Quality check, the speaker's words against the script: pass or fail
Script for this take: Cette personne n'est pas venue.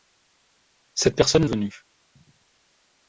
fail